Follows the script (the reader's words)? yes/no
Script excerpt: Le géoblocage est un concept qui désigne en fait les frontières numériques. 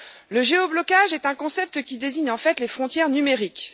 yes